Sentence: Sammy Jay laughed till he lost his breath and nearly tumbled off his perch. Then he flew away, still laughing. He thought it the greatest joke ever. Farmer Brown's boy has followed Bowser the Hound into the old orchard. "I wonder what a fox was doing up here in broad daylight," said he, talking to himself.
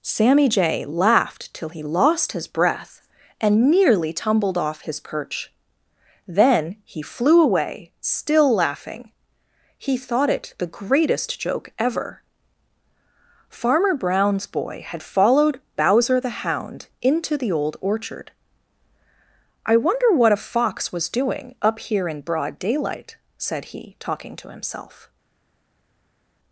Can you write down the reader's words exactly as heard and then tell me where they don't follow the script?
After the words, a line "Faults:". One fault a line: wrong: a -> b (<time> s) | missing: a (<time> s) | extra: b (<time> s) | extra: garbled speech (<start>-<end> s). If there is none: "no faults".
Sammy Jay laughed till he lost his breath and nearly tumbled off his perch. Then he flew away, still laughing. He thought it the greatest joke ever. Farmer Brown's boy had followed Bowser the Hound into the old orchard. "I wonder what a fox was doing up here in broad daylight," said he, talking to himself.
Faults:
wrong: has -> had (14.9 s)